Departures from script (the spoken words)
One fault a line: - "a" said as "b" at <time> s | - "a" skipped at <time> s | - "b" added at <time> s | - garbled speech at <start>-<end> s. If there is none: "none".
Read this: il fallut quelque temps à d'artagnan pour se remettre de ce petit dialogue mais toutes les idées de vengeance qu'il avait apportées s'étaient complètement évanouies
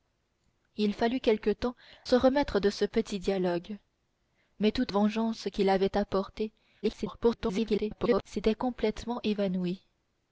- "à d'artagnan pour" skipped at 1.8 s
- "les idées de" skipped at 4.9 s
- garbled speech at 6.8-8.2 s